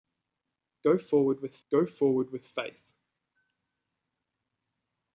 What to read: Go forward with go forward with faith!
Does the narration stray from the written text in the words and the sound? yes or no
no